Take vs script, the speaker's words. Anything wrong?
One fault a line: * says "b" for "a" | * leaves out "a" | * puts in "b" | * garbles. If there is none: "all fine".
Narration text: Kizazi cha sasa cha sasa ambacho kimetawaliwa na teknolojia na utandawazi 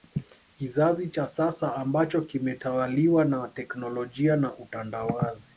* leaves out "cha sasa"